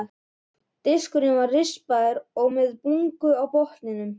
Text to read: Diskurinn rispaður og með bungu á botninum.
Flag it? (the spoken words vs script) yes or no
yes